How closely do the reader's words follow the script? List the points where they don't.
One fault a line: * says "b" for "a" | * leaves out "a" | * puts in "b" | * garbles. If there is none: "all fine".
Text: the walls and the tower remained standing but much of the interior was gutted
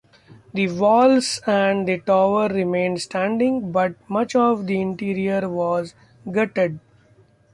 all fine